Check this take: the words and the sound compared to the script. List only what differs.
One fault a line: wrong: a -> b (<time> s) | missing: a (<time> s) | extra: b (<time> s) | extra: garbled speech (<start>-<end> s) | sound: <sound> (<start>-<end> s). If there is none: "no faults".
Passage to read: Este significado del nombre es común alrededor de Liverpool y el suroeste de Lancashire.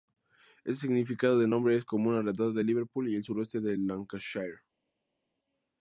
no faults